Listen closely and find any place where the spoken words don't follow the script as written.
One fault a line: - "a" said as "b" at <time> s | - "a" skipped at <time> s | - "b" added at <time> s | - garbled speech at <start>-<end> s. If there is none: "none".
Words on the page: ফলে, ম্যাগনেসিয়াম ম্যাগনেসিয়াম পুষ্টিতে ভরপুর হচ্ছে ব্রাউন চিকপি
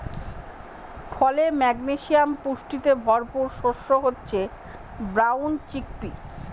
- "ম্যাগনেসিয়াম" skipped at 2.3 s
- "শস্য" added at 3.6 s